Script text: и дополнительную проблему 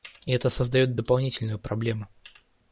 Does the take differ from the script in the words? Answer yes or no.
yes